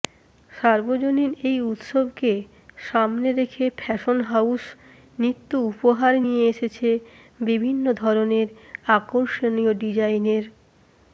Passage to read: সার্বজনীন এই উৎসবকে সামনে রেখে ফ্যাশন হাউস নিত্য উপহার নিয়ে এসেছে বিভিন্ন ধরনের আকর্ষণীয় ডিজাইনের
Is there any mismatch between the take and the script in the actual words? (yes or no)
no